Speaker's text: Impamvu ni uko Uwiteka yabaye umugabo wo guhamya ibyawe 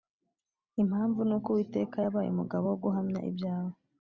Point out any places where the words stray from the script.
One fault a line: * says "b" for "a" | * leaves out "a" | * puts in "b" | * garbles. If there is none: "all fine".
all fine